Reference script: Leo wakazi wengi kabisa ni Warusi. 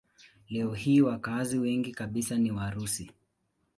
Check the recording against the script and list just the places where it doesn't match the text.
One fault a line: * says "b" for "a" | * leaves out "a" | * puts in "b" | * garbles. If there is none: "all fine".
* puts in "hii"